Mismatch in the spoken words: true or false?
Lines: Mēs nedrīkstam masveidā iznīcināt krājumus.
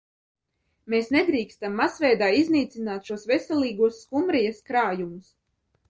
true